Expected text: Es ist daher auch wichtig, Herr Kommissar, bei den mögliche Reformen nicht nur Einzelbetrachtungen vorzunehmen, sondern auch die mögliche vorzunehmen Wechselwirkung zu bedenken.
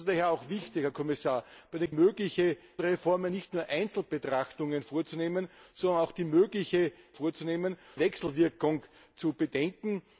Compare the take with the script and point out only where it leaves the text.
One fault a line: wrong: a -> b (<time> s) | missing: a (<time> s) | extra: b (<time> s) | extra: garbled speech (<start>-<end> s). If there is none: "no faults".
no faults